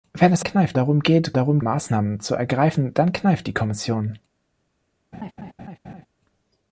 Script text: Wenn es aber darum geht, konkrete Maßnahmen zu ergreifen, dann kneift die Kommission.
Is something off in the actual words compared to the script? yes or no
yes